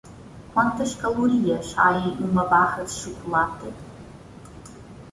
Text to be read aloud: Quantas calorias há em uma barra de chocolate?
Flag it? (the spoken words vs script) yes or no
no